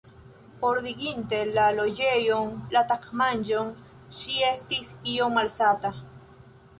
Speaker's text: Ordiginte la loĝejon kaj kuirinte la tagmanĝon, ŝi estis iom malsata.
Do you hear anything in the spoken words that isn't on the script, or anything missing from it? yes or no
yes